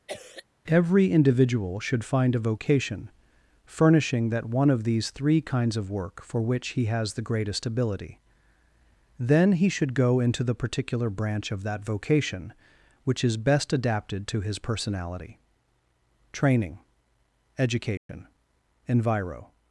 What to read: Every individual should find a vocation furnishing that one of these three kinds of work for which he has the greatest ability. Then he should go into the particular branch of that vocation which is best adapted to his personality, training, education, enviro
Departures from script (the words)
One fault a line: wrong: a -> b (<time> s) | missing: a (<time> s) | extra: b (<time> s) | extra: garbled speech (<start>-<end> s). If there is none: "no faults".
no faults